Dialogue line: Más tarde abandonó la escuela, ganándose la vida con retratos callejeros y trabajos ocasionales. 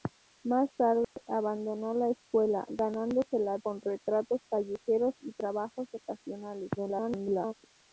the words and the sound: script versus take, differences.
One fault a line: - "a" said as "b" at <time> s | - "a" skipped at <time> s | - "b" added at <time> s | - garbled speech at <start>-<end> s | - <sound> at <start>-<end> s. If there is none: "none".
- dropout at 1.0-1.2 s
- "vida" skipped at 3.6 s
- garbled speech at 6.8-7.5 s